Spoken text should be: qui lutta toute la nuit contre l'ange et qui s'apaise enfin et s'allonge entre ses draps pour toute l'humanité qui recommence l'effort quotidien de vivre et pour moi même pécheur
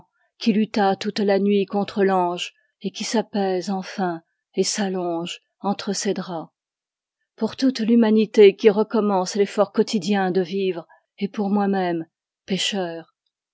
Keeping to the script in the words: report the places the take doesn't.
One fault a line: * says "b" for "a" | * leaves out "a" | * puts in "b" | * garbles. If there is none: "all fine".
all fine